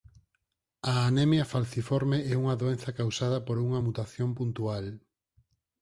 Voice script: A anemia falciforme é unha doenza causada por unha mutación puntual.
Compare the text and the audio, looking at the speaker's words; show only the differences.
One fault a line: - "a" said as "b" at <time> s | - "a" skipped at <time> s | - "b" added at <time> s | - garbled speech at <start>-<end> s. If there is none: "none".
none